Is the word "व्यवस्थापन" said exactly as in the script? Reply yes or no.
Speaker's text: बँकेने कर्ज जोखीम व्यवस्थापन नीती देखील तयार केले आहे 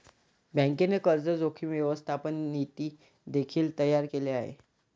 yes